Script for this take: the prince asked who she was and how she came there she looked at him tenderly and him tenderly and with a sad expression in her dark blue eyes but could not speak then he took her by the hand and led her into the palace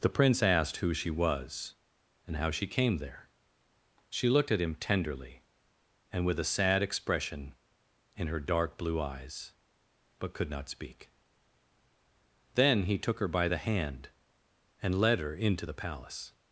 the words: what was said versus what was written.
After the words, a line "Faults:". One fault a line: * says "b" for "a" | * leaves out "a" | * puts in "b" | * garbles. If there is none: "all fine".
the prince asked who she was and how she came there she looked at him tenderly and with a sad expression in her dark blue eyes but could not speak then he took her by the hand and led her into the palace
Faults:
* leaves out "him tenderly and"